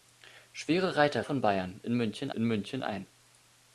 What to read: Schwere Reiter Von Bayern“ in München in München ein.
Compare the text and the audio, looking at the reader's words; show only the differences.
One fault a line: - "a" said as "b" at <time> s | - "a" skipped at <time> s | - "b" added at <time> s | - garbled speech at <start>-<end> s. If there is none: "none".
none